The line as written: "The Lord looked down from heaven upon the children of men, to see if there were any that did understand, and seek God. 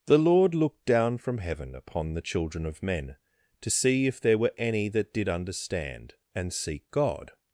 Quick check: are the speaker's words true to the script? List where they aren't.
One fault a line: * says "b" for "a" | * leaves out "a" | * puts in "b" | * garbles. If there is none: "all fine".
all fine